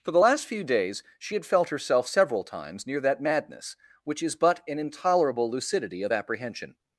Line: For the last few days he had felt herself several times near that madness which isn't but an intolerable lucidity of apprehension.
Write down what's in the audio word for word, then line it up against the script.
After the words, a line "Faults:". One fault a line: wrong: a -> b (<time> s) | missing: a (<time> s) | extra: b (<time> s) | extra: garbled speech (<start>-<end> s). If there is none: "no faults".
For the last few days she had felt herself several times near that madness which is but an intolerable lucidity of apprehension.
Faults:
wrong: he -> she (1.2 s)
wrong: isn't -> is (4.2 s)